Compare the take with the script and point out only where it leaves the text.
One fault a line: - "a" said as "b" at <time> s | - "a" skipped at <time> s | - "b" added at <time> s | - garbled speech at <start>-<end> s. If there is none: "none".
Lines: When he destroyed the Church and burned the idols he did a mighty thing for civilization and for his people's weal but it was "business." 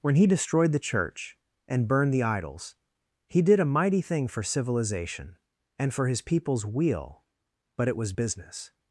none